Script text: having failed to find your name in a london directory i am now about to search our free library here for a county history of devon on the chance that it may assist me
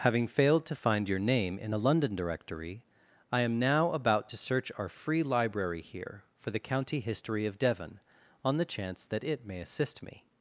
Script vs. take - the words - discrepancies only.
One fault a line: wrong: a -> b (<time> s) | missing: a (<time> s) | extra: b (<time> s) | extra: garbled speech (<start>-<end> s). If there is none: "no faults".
wrong: a -> the (6.5 s)